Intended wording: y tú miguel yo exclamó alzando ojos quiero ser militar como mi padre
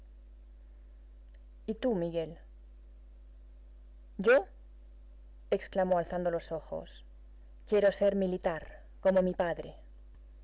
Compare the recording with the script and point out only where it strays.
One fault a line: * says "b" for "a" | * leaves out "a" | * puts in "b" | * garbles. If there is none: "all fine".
* puts in "los"